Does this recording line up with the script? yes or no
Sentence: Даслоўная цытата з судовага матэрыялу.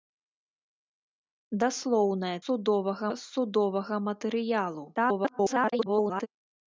no